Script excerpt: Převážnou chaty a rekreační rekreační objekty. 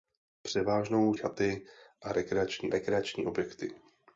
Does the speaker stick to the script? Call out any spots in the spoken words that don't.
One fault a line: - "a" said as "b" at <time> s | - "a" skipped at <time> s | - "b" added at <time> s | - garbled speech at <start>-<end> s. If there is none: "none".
none